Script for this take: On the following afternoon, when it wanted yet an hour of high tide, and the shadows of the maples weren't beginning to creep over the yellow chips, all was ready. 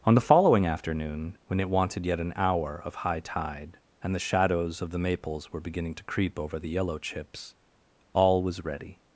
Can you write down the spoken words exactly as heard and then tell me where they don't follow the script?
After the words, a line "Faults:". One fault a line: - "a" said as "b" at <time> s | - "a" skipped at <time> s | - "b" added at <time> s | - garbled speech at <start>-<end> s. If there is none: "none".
On the following afternoon, when it wanted yet an hour of high tide, and the shadows of the maples were beginning to creep over the yellow chips, all was ready.
Faults:
- "weren't" said as "were" at 5.5 s